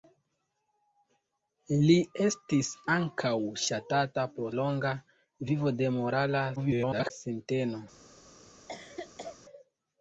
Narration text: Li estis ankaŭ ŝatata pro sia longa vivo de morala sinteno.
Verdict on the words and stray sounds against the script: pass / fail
fail